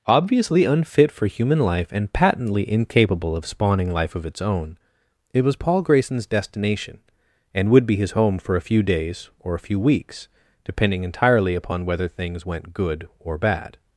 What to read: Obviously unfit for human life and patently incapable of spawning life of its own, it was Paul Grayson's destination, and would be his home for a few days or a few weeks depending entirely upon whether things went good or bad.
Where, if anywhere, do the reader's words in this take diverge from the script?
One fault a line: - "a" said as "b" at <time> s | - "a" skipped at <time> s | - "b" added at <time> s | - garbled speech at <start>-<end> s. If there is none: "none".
none